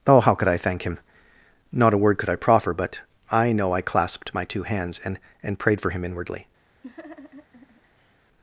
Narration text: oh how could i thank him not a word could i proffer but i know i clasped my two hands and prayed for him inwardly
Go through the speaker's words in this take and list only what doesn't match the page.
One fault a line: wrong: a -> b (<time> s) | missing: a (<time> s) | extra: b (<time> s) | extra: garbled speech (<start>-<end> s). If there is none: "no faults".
extra: and (5.4 s)